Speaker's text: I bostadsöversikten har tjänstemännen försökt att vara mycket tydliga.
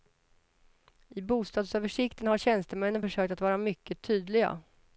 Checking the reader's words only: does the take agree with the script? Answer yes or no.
yes